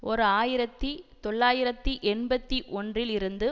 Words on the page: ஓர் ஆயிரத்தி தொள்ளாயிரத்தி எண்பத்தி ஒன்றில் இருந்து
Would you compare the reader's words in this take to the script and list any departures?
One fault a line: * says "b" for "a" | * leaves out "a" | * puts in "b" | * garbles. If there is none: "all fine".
all fine